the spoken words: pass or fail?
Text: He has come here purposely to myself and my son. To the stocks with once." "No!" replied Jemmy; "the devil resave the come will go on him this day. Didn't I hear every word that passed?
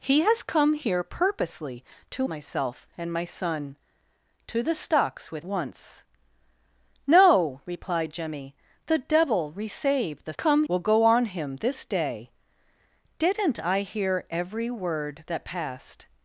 pass